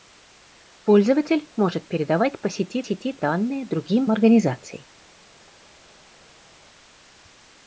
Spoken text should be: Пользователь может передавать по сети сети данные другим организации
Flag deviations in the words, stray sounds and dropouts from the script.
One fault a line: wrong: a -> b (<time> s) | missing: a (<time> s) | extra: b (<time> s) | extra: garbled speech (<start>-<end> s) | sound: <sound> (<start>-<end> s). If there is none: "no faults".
no faults